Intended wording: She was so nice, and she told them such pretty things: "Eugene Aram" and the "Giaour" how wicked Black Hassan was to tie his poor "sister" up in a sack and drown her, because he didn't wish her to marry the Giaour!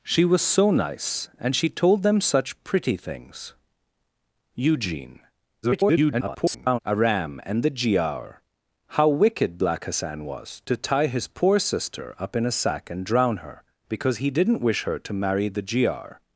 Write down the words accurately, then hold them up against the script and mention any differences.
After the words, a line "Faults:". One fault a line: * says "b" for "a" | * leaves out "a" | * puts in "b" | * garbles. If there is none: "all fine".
She was so nice, and she told them such pretty things: "Eugene [garbled] Aram" and the "Giaour" how wicked Black Hassan was to tie his poor "sister" up in a sack and drown her, because he didn't wish her to marry the Giaour!
Faults:
* garbles